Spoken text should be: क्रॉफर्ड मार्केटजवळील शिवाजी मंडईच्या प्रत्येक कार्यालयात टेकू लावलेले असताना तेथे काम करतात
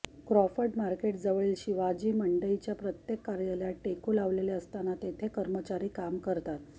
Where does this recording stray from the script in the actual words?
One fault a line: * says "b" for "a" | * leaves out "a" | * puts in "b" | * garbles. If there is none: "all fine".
* puts in "कर्मचारी"